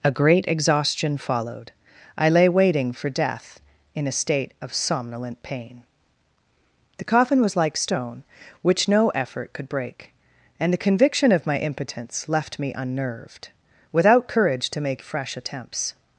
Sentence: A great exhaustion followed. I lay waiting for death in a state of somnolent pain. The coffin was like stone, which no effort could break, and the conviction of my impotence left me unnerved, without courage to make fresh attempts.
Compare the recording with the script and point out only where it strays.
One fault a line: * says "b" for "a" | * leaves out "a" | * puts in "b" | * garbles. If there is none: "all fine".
all fine